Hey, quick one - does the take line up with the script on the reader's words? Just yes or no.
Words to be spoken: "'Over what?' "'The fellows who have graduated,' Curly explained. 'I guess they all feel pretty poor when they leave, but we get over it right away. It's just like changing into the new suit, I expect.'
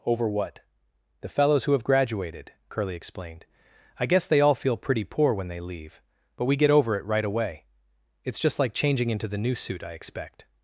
yes